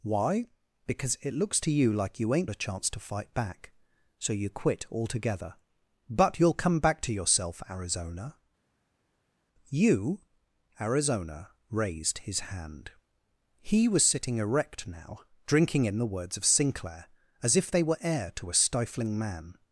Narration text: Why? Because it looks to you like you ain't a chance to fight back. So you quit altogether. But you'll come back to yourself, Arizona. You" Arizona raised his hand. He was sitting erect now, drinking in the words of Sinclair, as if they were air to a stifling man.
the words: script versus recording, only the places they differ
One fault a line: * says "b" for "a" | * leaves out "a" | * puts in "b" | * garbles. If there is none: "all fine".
all fine